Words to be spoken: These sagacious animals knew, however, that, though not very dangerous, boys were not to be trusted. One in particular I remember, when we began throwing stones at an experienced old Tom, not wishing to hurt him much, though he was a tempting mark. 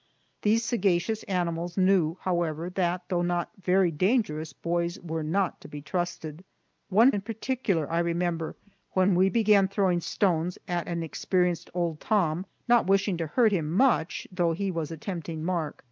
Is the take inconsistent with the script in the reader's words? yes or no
no